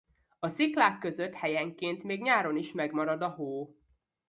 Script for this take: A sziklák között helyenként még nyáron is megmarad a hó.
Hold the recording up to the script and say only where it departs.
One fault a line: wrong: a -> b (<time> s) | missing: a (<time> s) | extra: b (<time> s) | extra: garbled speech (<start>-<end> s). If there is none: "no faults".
no faults